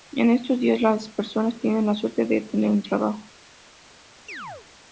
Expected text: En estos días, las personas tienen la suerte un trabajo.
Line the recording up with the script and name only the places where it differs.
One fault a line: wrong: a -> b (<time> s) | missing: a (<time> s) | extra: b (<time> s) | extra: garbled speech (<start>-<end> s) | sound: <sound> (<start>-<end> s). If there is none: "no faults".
extra: de tener (2.2 s)
sound: chirp (4.3-4.7 s)